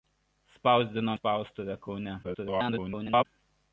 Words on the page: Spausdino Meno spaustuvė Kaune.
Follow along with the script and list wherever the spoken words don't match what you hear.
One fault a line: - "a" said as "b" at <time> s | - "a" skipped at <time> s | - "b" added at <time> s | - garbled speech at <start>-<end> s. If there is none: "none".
- "Meno" skipped at 1.1 s
- garbled speech at 2.2-3.3 s